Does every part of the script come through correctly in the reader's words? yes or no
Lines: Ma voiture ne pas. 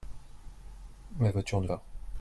yes